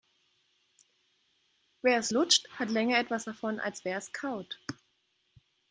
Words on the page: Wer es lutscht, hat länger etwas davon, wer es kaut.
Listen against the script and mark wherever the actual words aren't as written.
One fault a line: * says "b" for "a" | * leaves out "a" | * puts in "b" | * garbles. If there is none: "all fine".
* puts in "als"